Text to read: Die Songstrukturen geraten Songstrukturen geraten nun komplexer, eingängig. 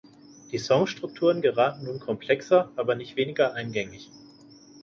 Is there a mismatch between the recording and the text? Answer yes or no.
yes